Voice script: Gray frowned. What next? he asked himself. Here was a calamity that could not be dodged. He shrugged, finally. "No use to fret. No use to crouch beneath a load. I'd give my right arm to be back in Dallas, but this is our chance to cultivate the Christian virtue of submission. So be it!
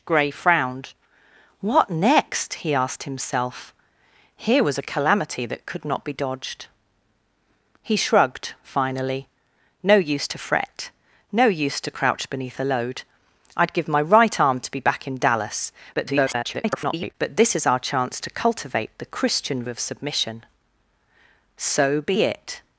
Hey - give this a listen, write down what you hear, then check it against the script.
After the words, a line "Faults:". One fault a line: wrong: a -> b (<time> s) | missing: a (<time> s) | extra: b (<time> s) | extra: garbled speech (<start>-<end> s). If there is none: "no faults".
Gray frowned. What next? he asked himself. Here was a calamity that could not be dodged. He shrugged, finally. "No use to fret. No use to crouch beneath a load. I'd give my right arm to be back in Dallas, [garbled] but this is our chance to cultivate the Christian of submission. So be it!
Faults:
extra: garbled speech (15.9-17.1 s)
missing: virtue (19.6 s)